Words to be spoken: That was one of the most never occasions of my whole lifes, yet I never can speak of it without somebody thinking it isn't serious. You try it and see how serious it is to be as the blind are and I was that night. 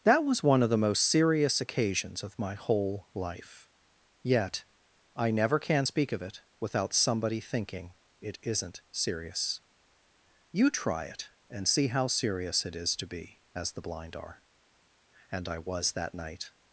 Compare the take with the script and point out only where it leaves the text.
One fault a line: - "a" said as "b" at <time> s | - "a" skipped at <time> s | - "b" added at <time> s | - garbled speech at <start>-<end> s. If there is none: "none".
- "never" said as "serious" at 1.0 s
- "lifes" said as "life" at 3.1 s